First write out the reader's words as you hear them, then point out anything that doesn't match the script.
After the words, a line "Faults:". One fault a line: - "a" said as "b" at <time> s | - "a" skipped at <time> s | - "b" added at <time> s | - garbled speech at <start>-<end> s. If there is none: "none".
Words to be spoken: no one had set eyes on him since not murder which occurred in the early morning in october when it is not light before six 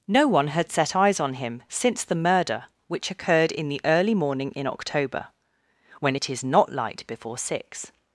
no one had set eyes on him since the murder which occurred in the early morning in october when it is not light before six
Faults:
- "not" said as "the" at 2.0 s